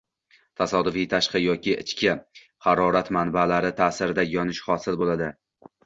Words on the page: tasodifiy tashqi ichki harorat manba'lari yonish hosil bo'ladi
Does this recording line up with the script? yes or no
no